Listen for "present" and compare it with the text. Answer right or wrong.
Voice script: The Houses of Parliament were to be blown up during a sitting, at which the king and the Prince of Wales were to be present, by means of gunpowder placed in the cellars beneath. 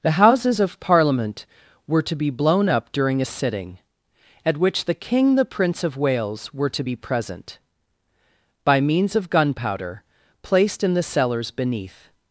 right